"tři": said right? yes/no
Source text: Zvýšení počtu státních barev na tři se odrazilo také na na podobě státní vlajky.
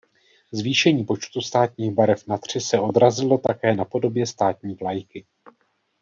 yes